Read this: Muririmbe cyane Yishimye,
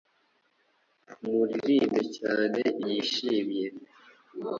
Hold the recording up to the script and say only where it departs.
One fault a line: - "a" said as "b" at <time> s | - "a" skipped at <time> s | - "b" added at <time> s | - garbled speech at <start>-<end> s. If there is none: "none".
none